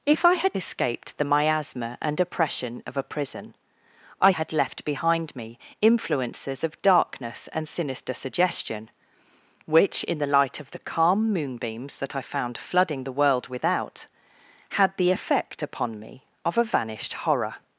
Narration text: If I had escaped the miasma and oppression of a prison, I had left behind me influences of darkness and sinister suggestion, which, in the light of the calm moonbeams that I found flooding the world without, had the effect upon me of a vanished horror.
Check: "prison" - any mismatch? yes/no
no